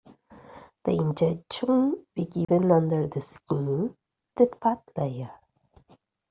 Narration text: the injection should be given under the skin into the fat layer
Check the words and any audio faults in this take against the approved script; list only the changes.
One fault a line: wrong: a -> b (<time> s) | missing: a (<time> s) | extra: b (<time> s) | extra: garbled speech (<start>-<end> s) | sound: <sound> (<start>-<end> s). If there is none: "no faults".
missing: should (2.0 s)
sound: dropout (2.4-2.5 s)
missing: into (3.9 s)